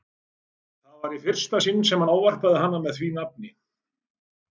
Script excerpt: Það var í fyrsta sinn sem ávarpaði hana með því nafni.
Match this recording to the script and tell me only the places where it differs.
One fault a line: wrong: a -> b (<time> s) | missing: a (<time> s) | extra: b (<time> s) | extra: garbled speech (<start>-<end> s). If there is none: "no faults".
no faults